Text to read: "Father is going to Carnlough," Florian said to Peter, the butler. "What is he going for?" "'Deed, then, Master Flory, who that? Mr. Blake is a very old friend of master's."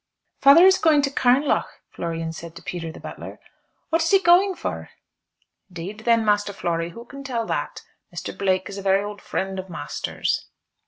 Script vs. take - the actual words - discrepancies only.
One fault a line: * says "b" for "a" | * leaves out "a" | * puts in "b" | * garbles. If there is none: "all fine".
* puts in "can tell"